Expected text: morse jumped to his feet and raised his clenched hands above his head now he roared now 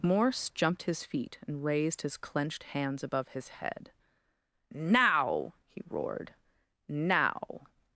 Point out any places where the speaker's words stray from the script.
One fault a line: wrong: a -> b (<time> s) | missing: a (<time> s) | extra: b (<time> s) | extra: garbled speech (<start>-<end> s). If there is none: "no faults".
missing: to (0.8 s)